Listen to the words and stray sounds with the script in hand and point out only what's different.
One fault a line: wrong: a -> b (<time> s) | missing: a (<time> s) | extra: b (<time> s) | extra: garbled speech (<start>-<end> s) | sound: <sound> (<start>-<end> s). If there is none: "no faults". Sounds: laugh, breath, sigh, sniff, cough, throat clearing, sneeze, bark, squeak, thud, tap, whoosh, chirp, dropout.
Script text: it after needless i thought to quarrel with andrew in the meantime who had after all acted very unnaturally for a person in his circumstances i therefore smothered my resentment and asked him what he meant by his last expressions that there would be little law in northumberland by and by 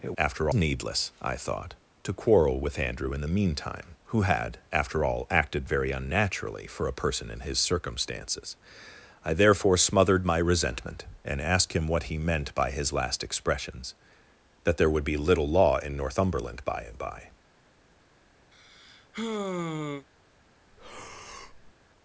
sound: sigh (18.5-20.1 s)
sound: breath (20.7-21.7 s)